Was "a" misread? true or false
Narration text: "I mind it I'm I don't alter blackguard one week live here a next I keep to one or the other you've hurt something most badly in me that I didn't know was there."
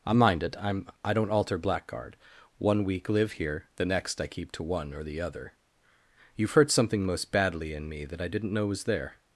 true